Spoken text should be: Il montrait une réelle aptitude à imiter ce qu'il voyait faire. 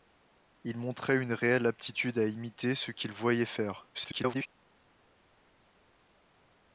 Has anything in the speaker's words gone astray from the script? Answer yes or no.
yes